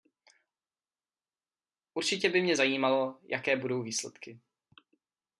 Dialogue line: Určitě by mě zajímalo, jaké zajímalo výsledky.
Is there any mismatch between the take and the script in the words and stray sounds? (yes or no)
yes